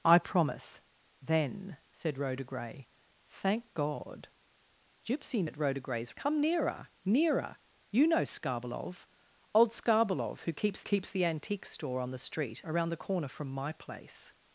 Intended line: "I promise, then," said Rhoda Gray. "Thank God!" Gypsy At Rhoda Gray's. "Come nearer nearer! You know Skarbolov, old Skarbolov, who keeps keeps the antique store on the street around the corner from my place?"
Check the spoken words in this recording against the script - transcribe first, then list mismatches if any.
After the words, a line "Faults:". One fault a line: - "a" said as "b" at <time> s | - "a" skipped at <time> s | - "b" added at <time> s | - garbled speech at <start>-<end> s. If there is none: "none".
"I promise, then," said Rhoda Gray. "Thank God!" Gypsy At Rhoda Gray's. "Come nearer nearer! You know Skarbolov, old Skarbolov, who keeps keeps the antique store on the street around the corner from my place?"
Faults:
none